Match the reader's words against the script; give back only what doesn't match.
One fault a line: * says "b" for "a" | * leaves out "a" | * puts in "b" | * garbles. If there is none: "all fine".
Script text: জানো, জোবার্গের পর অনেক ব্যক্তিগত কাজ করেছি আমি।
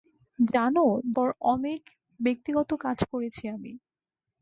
* leaves out "জোবার্গের"